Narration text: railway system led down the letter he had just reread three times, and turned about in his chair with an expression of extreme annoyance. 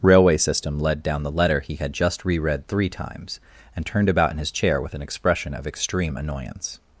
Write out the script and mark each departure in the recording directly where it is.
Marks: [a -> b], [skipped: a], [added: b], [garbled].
railway system led down the letter he had just reread three times, and turned about in his chair with an expression of extreme annoyance.